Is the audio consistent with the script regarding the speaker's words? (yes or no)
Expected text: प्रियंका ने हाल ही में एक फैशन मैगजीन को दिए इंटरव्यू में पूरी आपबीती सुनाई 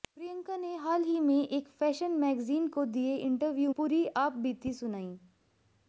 no